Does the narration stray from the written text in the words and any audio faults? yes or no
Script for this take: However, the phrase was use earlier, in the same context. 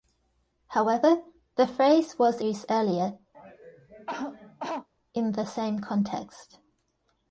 yes